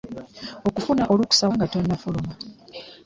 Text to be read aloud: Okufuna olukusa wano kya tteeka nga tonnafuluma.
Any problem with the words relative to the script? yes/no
yes